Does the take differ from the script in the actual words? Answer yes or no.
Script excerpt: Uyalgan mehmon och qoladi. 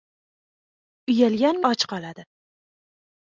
yes